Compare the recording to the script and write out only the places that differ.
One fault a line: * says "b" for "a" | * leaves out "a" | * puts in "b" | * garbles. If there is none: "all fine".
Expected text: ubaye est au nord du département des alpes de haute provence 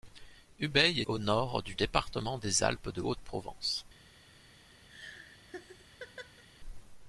all fine